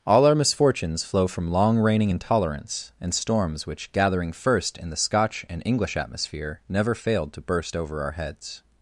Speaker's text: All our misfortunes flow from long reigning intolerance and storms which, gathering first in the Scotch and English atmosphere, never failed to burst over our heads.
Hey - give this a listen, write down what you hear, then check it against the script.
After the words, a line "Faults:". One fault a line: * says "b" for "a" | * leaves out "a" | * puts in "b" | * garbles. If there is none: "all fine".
All our misfortunes flow from long reigning intolerance and storms which, gathering first in the Scotch and English atmosphere, never failed to burst over our heads.
Faults:
all fine